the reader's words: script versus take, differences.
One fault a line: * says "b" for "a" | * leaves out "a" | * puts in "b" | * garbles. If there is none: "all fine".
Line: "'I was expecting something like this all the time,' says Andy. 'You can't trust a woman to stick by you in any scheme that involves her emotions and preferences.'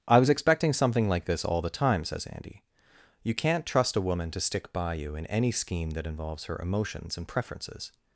all fine